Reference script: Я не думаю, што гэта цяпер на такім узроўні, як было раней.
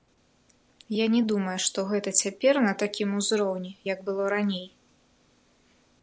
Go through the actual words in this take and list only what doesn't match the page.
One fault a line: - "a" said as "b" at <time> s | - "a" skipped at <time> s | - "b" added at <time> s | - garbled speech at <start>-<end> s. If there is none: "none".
none